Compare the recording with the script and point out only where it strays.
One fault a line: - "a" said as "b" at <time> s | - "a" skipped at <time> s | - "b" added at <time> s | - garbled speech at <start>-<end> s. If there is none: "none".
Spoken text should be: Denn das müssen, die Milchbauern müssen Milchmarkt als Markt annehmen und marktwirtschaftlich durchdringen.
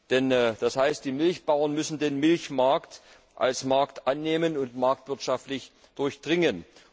- "müssen" said as "heißt" at 0.8 s
- "den" added at 2.0 s